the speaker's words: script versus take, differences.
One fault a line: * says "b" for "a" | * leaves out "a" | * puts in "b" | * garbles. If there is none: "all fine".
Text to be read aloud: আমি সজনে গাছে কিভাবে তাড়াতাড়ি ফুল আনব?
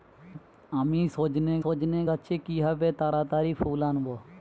* puts in "সজনে"